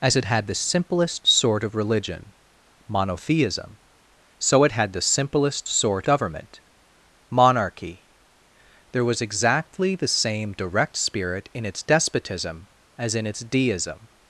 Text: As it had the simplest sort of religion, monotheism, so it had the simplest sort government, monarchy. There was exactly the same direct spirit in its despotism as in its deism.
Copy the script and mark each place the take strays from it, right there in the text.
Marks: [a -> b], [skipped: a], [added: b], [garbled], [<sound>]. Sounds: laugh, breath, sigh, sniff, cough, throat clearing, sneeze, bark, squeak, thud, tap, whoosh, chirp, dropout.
As it had the simplest sort of religion, monotheism, so it had the simplest sort government, monarchy. There was exactly the same direct spirit in its despotism as in its deism.